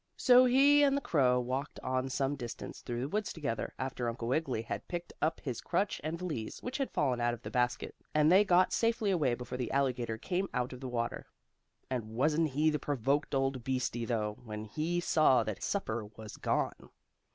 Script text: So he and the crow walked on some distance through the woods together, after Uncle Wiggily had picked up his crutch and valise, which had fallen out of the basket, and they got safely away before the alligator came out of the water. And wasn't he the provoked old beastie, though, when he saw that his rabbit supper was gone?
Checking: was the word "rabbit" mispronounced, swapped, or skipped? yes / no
yes